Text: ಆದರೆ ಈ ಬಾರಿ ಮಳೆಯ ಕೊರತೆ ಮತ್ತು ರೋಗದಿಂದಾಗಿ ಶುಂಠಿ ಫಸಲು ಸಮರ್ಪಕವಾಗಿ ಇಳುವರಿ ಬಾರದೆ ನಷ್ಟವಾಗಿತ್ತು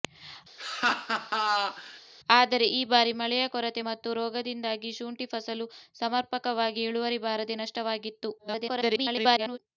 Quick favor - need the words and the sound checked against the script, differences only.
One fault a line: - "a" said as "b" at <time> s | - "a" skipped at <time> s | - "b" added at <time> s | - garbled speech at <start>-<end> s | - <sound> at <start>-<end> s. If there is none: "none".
- laugh at 0.6-2.0 s
- garbled speech at 8.4-9.6 s